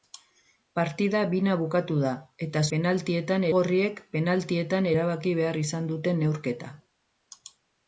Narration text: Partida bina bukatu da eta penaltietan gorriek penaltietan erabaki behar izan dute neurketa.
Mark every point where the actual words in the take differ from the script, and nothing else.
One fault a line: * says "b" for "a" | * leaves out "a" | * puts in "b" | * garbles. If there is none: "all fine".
all fine